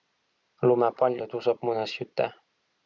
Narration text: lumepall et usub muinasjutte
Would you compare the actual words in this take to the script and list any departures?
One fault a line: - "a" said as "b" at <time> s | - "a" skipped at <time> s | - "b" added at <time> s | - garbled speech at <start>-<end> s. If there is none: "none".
none